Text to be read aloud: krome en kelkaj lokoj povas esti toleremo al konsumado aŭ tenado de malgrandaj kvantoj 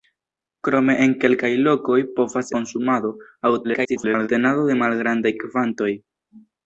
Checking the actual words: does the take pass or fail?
fail